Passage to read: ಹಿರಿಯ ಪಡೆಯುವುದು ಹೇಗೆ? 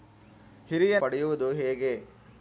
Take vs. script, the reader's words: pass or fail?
pass